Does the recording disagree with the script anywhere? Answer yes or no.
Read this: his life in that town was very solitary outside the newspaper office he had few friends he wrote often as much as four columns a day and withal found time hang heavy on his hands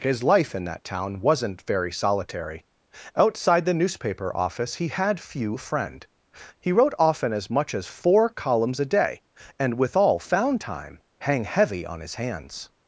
yes